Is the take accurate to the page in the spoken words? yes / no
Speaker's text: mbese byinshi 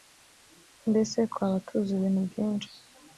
no